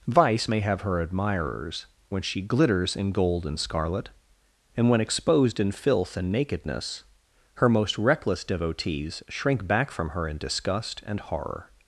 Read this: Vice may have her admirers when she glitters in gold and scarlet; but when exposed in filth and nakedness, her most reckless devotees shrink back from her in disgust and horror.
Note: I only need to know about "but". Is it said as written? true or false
false